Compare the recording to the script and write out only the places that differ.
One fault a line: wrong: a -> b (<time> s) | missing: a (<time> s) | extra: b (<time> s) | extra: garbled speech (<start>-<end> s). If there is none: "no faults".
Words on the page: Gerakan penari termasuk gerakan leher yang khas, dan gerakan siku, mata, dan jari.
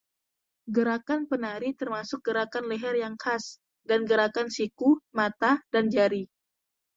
no faults